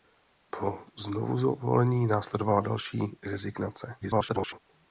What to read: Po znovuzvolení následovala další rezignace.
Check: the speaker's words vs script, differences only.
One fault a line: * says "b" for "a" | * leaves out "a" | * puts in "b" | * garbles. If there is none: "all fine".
* garbles